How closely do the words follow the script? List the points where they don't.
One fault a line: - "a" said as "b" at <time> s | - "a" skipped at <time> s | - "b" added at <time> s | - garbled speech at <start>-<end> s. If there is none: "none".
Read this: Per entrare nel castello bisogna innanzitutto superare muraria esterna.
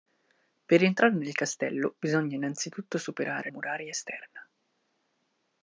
none